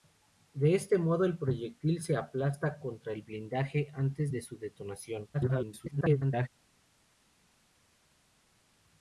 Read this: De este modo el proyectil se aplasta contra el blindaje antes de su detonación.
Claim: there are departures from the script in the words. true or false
true